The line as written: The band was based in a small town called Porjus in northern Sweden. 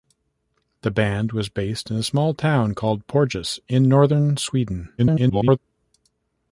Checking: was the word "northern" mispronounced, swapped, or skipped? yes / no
no